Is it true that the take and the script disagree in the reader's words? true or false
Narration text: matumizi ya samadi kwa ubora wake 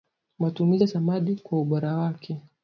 false